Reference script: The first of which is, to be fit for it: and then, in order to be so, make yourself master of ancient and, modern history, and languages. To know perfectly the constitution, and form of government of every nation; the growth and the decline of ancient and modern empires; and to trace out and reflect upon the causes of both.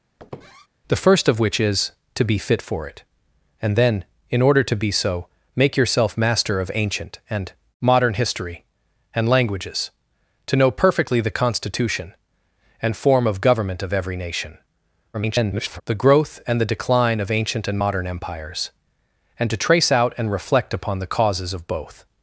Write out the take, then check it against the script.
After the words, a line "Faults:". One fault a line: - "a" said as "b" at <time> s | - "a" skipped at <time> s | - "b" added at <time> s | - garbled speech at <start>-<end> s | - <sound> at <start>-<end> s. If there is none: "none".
The first of which is, to be fit for it: and then, in order to be so, make yourself master of ancient and, modern history, and languages. To know perfectly the constitution, and form of government of every nation; [garbled] the growth and the decline of ancient and modern empires; and to trace out and reflect upon the causes of both.
Faults:
- squeak at 0.2-0.7 s
- garbled speech at 15.1-15.8 s